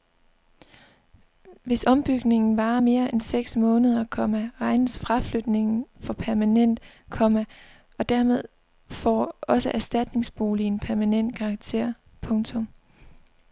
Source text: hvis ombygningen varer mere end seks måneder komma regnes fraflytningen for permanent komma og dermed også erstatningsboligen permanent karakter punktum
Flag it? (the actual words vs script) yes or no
yes